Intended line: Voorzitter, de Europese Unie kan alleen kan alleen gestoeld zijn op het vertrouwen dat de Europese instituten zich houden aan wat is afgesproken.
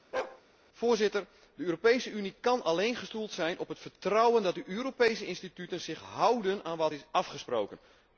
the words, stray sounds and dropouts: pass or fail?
fail